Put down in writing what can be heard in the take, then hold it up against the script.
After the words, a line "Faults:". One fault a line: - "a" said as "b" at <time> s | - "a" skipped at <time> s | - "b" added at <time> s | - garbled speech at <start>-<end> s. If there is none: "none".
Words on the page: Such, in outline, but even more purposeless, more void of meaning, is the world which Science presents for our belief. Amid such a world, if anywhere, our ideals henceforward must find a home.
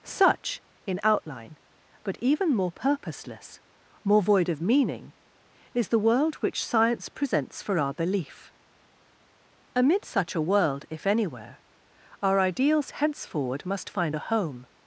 Such, in outline, but even more purposeless, more void of meaning, is the world which Science presents for our belief. Amid such a world, if anywhere, our ideals henceforward must find a home.
Faults:
none